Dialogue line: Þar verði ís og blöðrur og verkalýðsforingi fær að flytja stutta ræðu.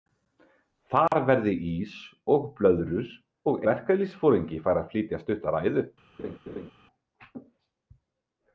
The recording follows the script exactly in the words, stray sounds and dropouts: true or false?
false